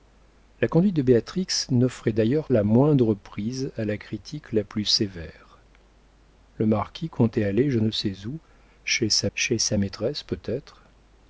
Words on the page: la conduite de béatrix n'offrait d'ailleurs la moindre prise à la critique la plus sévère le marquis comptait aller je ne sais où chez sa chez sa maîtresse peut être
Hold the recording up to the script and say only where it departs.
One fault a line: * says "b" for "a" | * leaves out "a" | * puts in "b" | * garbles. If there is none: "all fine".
all fine